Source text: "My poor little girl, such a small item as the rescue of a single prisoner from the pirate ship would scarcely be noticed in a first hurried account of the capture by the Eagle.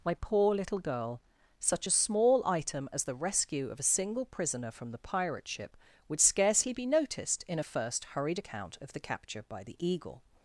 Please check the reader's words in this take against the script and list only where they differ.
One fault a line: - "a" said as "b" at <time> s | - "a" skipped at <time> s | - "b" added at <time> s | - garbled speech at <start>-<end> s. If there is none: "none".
none